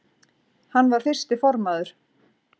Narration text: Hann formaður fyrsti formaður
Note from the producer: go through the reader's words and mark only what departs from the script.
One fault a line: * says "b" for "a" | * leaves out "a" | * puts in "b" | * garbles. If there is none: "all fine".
* says "var" for "formaður"